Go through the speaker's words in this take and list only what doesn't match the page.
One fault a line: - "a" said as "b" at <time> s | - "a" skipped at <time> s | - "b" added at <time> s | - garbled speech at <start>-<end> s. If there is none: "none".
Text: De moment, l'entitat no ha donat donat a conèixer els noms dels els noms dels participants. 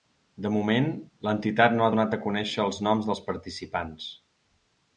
- "donat" skipped at 2.1 s
- "els noms dels" skipped at 3.2 s